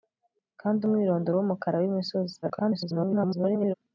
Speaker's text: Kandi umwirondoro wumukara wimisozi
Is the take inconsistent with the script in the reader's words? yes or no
yes